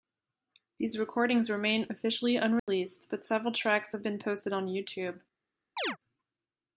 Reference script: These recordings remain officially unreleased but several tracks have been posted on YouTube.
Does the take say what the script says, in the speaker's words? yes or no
yes